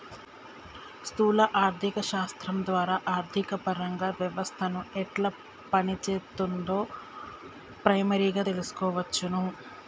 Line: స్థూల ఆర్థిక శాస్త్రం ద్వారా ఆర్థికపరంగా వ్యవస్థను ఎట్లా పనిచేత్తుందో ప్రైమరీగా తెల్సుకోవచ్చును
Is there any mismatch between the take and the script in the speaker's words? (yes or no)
no